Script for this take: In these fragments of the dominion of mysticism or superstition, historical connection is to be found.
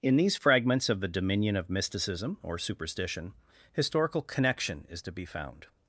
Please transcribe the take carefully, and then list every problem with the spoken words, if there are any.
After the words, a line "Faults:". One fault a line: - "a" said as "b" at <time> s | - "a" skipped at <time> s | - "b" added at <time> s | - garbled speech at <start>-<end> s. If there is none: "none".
In these fragments of the dominion of mysticism or superstition, historical connection is to be found.
Faults:
none